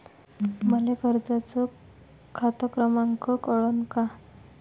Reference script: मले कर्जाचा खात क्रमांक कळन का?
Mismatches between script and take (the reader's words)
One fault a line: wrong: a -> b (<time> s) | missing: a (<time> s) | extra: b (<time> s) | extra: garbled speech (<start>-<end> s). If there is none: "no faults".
no faults